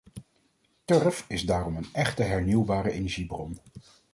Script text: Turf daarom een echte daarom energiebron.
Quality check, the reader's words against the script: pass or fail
fail